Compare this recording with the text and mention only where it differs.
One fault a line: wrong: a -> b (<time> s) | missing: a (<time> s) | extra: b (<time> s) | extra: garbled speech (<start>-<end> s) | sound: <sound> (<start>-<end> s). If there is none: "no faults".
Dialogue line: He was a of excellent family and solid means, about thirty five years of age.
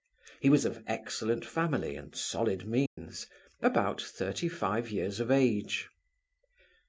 sound: dropout (2.9-3.0 s)